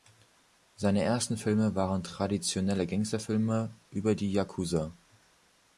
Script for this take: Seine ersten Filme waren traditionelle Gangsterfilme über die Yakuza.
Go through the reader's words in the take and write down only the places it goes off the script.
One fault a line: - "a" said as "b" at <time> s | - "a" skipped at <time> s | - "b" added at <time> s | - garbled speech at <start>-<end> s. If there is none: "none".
none